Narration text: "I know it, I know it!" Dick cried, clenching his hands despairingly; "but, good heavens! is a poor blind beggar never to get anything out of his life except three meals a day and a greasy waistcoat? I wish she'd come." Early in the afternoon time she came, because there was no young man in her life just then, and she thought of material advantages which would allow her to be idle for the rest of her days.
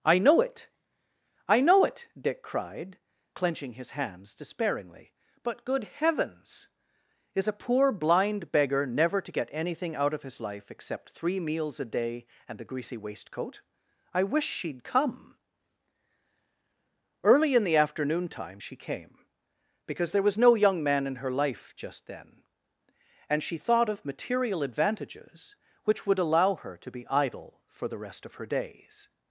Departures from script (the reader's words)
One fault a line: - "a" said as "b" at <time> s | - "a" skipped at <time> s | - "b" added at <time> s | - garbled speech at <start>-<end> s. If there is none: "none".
- "a" said as "the" at 12.6 s